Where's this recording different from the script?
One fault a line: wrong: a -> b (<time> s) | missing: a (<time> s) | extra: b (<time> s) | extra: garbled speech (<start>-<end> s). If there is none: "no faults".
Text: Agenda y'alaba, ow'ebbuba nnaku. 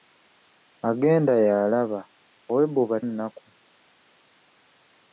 no faults